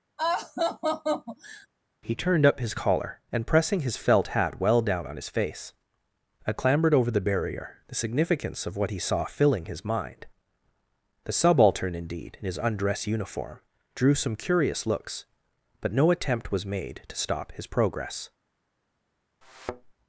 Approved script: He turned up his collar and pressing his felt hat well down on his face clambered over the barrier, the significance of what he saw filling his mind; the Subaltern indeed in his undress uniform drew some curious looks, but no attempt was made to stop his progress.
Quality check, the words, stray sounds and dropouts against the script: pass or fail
fail